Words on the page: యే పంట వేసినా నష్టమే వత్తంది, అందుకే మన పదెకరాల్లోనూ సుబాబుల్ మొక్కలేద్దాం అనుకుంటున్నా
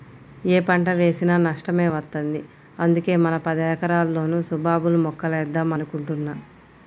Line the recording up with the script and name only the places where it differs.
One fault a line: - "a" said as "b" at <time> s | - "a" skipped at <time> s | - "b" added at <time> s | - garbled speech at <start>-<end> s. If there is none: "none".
none